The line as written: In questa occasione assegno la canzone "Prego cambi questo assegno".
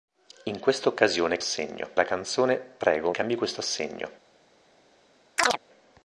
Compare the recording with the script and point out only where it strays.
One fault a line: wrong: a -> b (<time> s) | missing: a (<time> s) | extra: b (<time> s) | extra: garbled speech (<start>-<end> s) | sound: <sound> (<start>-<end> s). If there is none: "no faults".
sound: chirp (5.4-5.6 s)